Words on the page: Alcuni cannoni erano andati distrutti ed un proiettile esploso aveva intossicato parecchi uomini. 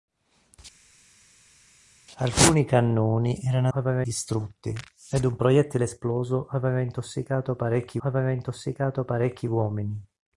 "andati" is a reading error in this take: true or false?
true